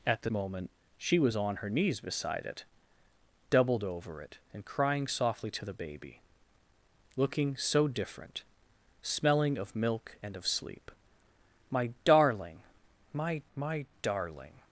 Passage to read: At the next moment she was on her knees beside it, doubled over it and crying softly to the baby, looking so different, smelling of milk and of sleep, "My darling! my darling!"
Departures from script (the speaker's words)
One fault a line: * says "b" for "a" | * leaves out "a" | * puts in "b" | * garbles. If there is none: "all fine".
* leaves out "next"
* puts in "my"